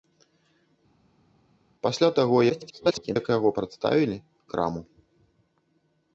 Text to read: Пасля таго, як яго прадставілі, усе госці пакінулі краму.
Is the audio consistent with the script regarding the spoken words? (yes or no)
no